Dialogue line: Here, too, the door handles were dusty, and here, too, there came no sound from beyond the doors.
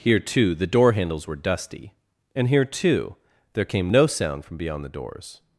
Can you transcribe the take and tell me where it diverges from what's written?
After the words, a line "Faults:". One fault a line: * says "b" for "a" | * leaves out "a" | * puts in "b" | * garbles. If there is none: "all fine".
Here, too, the door handles were dusty, and here, too, there came no sound from beyond the doors.
Faults:
all fine